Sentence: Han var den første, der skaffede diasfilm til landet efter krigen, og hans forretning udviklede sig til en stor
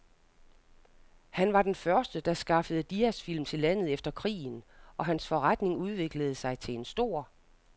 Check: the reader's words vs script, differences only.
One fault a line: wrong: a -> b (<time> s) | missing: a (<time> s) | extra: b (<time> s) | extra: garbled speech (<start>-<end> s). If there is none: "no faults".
no faults